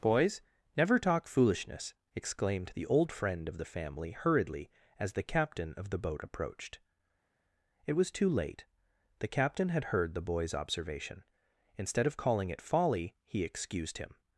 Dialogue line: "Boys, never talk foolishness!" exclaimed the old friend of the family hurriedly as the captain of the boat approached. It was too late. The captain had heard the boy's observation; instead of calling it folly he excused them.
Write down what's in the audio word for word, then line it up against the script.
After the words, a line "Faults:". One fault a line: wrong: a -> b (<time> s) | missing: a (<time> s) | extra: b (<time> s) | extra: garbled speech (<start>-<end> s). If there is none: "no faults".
"Boys, never talk foolishness!" exclaimed the old friend of the family hurriedly as the captain of the boat approached. It was too late. The captain had heard the boy's observation; instead of calling it folly he excused him.
Faults:
wrong: them -> him (14.0 s)